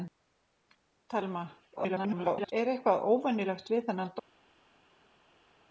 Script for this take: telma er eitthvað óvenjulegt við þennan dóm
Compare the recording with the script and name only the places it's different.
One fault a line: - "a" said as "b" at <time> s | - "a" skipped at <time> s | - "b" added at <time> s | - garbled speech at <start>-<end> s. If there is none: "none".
- garbled speech at 1.8-2.5 s